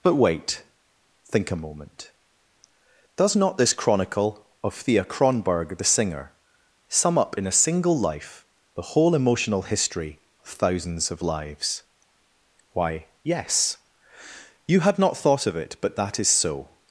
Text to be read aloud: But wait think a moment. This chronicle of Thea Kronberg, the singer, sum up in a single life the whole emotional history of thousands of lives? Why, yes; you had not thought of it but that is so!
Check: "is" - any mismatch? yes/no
no